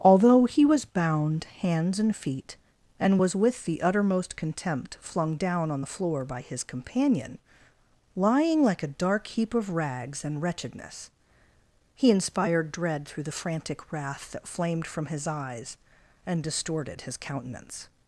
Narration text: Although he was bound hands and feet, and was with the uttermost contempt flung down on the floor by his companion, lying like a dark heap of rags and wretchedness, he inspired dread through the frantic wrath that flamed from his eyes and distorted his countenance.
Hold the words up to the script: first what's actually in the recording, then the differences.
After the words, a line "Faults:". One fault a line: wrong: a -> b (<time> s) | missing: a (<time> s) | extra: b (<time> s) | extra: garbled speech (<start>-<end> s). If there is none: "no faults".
Although he was bound hands and feet, and was with the uttermost contempt flung down on the floor by his companion, lying like a dark heap of rags and wretchedness, he inspired dread through the frantic wrath that flamed from his eyes and distorted his countenance.
Faults:
no faults